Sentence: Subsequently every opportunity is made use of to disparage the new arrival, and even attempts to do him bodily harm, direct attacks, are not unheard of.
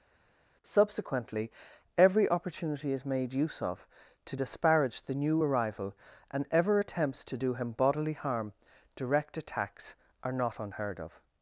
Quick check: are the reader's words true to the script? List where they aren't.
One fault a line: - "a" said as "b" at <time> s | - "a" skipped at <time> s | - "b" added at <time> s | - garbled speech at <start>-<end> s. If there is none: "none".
- "even" said as "ever" at 6.5 s